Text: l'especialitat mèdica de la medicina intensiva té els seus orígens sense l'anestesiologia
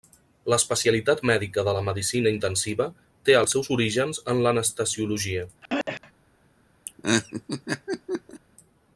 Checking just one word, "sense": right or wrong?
wrong